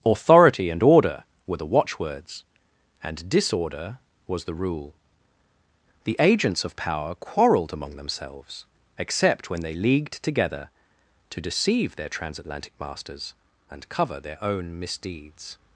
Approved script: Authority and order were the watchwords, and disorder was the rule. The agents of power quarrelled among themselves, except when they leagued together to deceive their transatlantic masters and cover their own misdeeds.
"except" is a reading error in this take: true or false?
false